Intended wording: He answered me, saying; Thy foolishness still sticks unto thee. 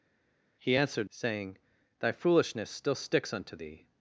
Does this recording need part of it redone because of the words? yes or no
yes